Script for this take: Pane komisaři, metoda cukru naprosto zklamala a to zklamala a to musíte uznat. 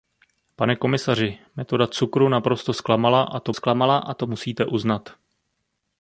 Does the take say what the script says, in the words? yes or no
yes